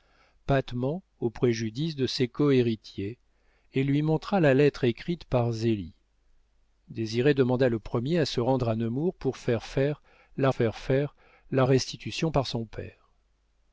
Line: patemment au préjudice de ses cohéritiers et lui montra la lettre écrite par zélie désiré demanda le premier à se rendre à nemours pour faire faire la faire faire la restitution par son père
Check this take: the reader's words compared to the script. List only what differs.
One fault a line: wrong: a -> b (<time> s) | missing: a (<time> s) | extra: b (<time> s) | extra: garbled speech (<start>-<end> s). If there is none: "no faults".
no faults